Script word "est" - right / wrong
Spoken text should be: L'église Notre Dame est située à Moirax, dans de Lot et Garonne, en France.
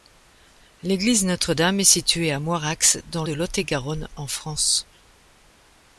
right